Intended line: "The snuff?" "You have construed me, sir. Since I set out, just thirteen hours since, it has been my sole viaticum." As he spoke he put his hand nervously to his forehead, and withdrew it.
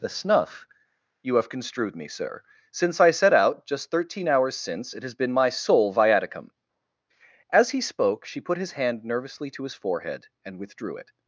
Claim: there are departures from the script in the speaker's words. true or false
true